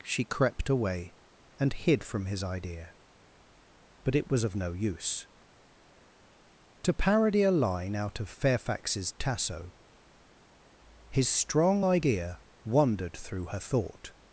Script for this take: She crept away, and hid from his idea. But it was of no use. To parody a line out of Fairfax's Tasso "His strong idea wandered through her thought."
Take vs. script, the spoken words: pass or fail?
pass